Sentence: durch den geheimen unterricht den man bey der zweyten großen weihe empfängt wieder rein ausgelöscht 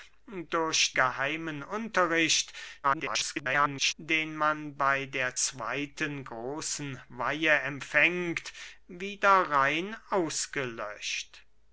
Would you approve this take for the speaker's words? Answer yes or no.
no